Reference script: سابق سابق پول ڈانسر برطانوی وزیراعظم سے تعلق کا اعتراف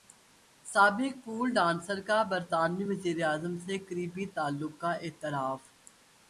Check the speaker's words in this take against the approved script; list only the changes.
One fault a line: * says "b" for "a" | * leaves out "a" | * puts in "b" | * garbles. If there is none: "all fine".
* leaves out "سابق"
* puts in "کا"
* puts in "قریبی"